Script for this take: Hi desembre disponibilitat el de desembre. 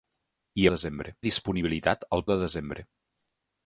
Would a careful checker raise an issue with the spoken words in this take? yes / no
no